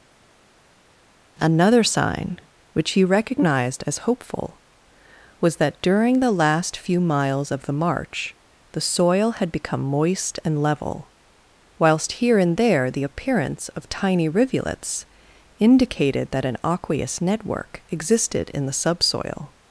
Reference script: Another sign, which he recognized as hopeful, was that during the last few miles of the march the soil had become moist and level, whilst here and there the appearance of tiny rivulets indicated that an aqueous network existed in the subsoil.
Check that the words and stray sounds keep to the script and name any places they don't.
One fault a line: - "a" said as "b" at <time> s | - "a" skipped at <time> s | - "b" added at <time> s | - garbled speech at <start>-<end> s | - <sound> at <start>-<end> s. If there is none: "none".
none